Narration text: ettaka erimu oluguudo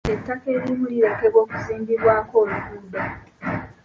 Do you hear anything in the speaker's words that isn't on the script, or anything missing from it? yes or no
yes